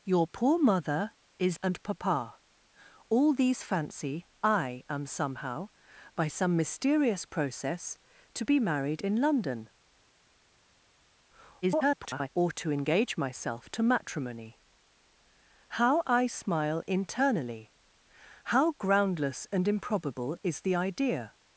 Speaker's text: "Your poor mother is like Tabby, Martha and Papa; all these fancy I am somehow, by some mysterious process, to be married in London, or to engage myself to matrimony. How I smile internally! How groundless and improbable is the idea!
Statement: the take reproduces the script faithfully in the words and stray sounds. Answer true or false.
false